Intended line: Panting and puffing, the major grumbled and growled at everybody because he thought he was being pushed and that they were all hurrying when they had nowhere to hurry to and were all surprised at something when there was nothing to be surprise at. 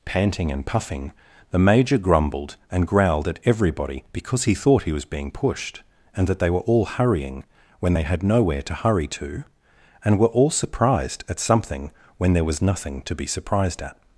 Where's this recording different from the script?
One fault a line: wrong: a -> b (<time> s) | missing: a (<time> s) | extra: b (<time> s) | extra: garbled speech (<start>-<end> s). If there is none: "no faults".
wrong: surprise -> surprised (13.3 s)